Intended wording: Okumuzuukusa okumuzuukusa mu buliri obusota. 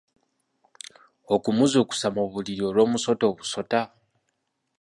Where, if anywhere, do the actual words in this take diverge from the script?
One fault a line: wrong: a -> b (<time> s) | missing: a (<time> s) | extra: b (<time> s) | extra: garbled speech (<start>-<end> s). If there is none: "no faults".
missing: okumuzuukusa (2.1 s)
extra: olw'omusota (2.7 s)